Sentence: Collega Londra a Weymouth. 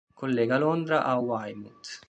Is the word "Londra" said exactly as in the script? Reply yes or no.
yes